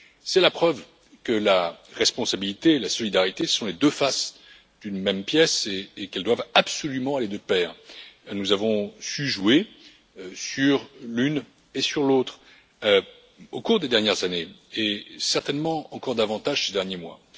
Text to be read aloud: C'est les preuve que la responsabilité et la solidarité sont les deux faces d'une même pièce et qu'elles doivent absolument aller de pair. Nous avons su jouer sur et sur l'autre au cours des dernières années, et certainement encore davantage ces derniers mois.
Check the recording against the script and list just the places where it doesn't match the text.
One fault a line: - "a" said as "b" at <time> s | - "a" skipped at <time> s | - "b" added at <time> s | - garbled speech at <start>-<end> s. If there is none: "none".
- "les" said as "la" at 0.4 s
- "l'une" added at 11.0 s